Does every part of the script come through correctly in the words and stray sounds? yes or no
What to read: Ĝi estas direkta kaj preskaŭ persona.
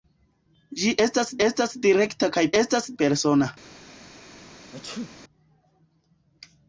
no